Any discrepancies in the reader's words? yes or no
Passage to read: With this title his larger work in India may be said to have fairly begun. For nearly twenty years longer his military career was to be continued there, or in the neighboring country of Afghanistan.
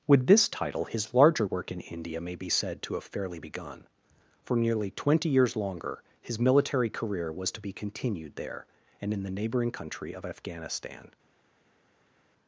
yes